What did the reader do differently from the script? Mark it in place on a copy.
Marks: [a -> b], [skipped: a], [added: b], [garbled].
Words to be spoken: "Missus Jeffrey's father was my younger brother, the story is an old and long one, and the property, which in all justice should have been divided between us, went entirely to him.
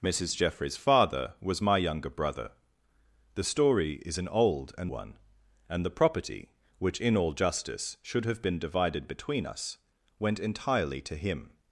"Missus Jeffrey's father was my younger brother, the story is an old and [skipped: long] one, and the property, which in all justice should have been divided between us, went entirely to him.